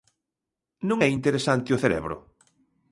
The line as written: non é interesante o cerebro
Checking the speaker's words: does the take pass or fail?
pass